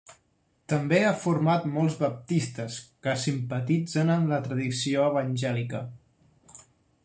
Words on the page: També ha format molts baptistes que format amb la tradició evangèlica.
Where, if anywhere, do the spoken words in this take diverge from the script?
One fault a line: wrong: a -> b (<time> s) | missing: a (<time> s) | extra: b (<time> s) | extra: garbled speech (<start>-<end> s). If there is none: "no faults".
wrong: format -> simpatitzen (3.2 s)